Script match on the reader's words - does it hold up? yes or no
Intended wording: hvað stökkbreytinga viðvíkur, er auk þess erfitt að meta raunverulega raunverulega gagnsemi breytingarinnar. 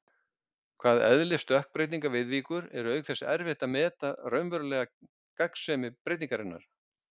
no